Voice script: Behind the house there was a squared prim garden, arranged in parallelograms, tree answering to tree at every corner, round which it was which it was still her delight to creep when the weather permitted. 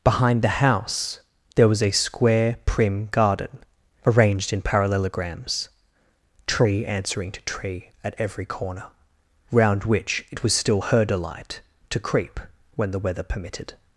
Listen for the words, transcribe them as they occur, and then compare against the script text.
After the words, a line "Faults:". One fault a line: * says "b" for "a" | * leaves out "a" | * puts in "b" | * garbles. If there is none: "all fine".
Behind the house there was a square prim garden, arranged in parallelograms, tree answering to tree at every corner, round which it was still her delight to creep when the weather permitted.
Faults:
* says "square" for "squared"
* leaves out "which it was"